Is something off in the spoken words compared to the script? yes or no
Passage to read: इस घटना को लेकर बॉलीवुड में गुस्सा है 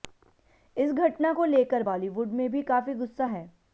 yes